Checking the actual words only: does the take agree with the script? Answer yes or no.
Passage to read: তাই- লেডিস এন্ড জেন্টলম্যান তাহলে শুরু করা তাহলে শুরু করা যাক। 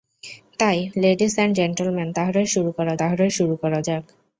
yes